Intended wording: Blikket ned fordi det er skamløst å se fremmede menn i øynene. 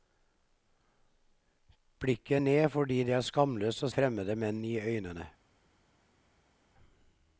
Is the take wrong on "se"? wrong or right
wrong